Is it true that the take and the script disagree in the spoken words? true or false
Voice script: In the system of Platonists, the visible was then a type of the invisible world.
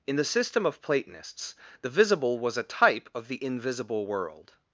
true